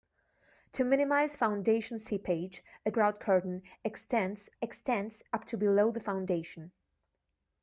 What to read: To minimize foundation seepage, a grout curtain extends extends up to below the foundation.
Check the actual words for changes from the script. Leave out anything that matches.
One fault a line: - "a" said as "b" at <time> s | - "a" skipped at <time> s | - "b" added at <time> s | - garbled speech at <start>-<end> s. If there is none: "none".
none